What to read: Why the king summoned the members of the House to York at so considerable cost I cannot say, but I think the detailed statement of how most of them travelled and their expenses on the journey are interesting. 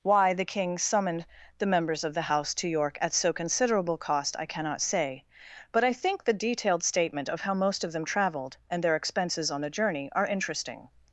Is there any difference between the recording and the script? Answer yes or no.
no